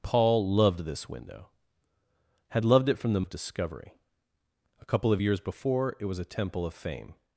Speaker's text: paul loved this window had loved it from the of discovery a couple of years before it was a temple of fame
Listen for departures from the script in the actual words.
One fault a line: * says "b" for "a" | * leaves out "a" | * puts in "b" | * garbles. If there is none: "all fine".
all fine